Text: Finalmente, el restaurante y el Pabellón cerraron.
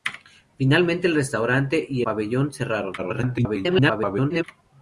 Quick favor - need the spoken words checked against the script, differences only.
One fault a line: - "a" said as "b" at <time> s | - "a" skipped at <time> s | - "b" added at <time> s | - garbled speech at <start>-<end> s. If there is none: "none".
- "el" skipped at 2.0 s
- garbled speech at 3.0-4.4 s